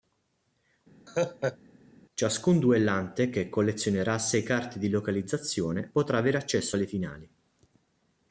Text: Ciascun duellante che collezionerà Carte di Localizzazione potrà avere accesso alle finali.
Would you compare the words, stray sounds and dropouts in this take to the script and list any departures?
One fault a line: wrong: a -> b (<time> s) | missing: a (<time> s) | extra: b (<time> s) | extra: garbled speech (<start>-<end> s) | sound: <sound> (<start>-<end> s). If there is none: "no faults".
sound: laugh (1.1-1.6 s)
extra: sei (4.2 s)